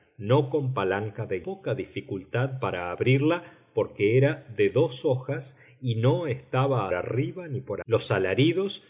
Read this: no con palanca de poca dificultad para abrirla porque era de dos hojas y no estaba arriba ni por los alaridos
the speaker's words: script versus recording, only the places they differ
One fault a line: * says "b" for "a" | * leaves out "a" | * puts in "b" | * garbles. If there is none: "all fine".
all fine